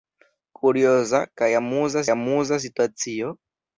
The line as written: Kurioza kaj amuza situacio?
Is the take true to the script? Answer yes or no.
no